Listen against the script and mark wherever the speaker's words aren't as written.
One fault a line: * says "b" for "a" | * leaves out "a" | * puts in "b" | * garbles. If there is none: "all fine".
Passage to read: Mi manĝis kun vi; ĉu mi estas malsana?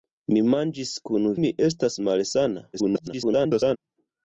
* leaves out "vi ĉu"
* garbles